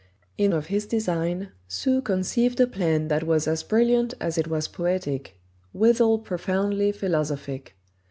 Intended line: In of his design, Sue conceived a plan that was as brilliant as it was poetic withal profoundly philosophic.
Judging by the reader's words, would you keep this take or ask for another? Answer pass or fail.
pass